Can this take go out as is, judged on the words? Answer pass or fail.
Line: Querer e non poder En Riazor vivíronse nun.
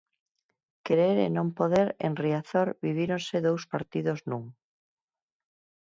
fail